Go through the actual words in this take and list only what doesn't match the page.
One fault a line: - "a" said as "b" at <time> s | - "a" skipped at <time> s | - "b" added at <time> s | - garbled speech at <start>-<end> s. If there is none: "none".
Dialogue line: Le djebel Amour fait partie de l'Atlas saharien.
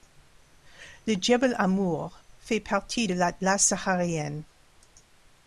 none